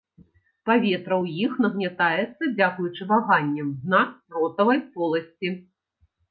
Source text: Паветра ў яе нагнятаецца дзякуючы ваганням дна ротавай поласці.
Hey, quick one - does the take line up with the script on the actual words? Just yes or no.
no